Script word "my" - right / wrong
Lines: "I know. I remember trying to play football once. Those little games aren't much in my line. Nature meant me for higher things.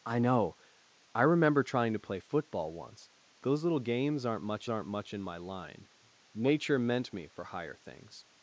right